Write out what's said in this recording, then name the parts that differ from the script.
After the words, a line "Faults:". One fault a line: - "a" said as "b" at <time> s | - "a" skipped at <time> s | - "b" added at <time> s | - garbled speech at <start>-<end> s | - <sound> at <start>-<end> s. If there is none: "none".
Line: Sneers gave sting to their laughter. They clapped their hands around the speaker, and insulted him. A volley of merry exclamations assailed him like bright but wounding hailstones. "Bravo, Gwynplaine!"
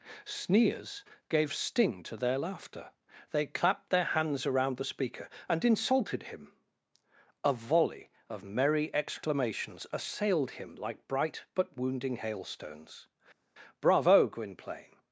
Sneers gave sting to their laughter. They clapped their hands around the speaker, and insulted him. A volley of merry exclamations assailed him like bright but wounding hailstones. "Bravo, Gwynplaine!"
Faults:
none